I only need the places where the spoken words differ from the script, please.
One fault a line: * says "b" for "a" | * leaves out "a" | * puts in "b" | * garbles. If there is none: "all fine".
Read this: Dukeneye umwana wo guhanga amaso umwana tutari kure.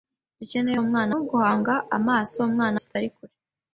all fine